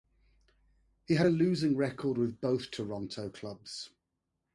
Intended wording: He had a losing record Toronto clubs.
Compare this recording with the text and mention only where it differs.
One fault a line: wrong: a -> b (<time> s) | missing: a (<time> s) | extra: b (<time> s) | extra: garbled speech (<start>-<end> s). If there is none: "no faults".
extra: with both (2.2 s)